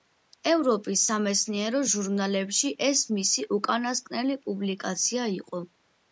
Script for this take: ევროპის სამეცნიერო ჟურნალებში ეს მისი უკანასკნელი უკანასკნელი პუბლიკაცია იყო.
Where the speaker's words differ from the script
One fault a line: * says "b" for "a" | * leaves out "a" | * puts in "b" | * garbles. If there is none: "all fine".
* leaves out "უკანასკნელი"